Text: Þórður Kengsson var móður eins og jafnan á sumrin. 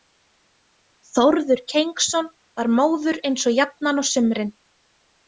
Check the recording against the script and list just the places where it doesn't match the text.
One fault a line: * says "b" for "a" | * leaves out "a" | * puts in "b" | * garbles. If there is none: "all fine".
all fine